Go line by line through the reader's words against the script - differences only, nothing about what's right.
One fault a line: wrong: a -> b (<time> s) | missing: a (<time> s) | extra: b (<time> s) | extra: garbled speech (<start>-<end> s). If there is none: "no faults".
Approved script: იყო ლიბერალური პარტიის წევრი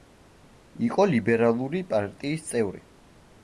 no faults